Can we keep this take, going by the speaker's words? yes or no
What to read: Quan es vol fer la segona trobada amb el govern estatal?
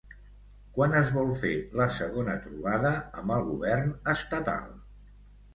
yes